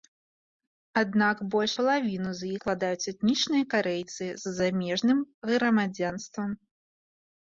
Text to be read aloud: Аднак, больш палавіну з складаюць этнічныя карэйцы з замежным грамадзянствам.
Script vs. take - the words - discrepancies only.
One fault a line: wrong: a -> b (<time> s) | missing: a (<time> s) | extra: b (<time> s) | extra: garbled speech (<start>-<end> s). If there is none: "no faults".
no faults